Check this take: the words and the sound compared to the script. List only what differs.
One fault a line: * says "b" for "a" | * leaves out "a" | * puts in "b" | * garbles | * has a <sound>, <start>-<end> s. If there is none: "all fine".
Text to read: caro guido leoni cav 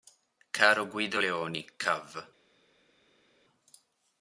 all fine